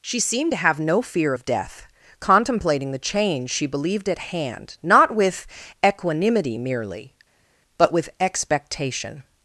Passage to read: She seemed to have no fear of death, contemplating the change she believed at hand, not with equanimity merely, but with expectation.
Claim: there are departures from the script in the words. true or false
false